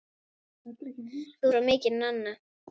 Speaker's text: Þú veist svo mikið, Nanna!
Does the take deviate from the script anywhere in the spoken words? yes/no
yes